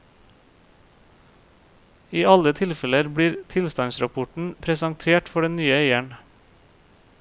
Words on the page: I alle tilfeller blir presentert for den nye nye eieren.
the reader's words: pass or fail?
fail